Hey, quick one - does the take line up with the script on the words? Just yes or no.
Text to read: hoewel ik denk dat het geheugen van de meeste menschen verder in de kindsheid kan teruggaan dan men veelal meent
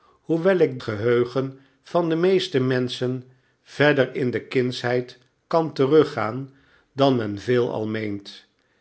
no